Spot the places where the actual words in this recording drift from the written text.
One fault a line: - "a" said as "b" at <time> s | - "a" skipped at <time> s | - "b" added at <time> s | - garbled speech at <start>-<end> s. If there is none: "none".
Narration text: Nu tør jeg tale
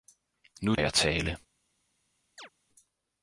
- "tør" skipped at 0.8 s